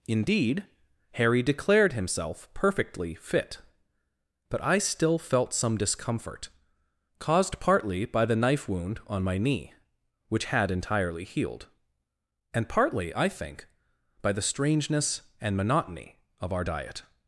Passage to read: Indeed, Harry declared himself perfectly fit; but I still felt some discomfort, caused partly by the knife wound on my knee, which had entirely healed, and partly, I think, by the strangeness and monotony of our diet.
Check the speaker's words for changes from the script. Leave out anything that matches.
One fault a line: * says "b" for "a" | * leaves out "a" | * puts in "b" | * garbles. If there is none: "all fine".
all fine